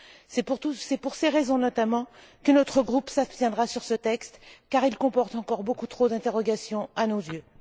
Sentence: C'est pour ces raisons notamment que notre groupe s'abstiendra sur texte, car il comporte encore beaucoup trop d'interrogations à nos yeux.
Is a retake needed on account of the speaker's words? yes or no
yes